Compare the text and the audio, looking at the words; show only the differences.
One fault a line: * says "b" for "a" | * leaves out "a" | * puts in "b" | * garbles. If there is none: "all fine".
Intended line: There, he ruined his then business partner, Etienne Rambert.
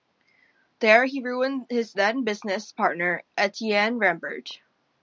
all fine